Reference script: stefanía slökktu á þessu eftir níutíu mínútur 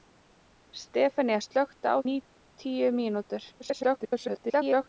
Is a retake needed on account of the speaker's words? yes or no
yes